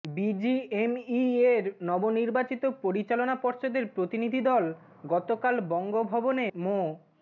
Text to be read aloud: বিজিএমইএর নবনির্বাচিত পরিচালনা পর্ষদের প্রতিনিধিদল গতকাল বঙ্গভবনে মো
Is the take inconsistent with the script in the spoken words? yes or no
no